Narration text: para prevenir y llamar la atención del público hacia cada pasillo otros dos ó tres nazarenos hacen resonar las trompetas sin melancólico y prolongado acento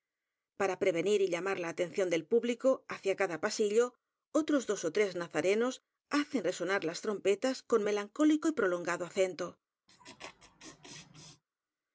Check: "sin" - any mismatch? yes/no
yes